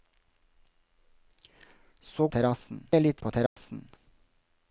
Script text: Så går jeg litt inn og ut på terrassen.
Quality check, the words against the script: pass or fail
fail